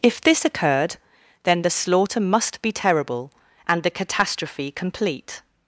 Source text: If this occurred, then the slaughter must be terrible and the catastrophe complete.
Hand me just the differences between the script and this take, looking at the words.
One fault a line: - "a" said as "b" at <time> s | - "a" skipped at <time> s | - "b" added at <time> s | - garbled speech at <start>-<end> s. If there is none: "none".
none